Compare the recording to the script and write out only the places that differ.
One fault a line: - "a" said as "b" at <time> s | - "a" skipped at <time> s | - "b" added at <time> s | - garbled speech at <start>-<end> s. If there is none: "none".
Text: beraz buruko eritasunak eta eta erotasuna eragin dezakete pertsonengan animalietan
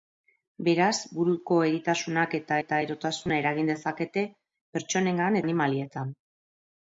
none